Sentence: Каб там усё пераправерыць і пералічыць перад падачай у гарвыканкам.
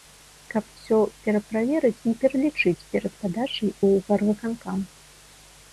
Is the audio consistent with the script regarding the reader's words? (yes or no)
no